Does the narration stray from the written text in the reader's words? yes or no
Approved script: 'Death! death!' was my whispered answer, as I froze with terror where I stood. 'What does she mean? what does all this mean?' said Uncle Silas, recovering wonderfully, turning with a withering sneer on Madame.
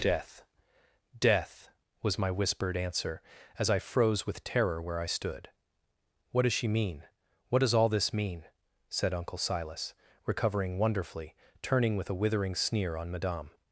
no